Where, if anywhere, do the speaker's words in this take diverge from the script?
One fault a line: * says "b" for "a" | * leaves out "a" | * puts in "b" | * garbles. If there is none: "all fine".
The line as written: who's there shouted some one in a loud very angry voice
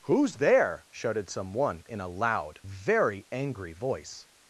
all fine